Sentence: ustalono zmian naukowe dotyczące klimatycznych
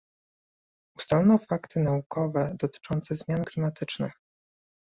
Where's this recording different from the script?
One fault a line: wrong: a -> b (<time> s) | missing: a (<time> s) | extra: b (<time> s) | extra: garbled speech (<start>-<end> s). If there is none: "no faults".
wrong: zmian -> fakty (1.5 s)
extra: zmian (3.1 s)